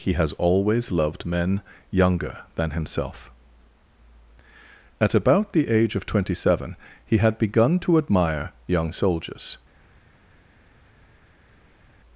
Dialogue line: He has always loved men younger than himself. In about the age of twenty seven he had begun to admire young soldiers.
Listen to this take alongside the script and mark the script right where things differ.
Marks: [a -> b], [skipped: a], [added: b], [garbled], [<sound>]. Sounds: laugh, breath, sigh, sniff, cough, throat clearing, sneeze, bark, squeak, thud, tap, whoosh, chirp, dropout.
He has always loved men younger than himself. [In -> At] about the age of twenty seven he had begun to admire young soldiers.